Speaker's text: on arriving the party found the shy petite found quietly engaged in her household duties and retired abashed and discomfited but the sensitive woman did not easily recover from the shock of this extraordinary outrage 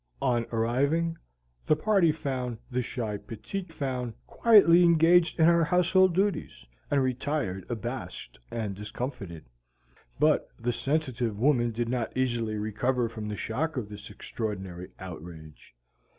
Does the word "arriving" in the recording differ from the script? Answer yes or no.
no